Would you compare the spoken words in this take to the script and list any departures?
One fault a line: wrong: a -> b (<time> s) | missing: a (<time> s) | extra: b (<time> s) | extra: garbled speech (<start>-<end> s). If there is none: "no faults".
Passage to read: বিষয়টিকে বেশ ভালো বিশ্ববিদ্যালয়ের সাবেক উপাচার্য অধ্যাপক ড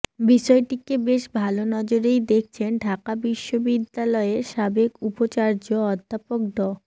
extra: নজরেই দেখছেন ঢাকা (1.7 s)